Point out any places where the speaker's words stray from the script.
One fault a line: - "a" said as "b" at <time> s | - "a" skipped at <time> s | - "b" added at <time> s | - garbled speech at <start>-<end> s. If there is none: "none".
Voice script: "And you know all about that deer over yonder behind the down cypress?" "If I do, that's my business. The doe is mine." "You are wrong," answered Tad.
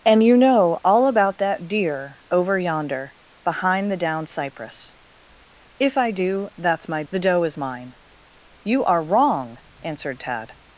- "business" skipped at 7.0 s